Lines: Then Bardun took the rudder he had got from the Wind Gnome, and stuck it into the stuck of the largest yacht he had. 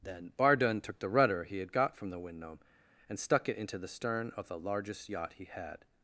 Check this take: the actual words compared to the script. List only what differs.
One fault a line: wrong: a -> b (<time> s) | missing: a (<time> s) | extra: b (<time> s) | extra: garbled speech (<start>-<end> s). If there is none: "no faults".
wrong: stuck -> stern (3.9 s)